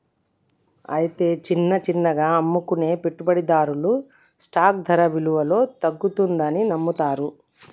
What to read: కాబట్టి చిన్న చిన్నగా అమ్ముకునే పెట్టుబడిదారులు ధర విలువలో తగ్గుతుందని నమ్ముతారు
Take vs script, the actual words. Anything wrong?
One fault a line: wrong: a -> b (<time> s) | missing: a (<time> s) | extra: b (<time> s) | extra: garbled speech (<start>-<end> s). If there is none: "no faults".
wrong: కాబట్టి -> అయితే (0.9 s)
extra: స్టాక్ (4.4 s)